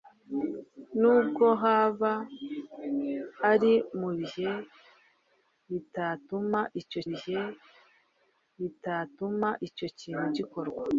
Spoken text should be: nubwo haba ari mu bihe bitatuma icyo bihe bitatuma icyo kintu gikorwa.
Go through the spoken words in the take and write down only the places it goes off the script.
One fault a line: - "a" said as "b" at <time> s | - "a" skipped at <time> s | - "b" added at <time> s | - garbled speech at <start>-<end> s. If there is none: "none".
none